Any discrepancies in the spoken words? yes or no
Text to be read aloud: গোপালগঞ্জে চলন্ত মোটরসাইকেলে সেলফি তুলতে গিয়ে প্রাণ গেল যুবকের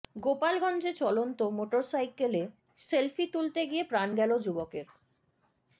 no